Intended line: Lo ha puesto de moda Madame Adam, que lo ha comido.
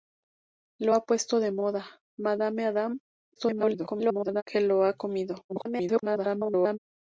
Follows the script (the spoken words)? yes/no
no